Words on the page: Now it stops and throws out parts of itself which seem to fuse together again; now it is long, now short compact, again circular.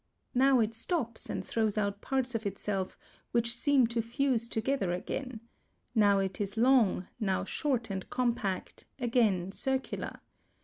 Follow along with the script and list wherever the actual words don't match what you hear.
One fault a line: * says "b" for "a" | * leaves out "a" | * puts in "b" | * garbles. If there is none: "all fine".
* puts in "and"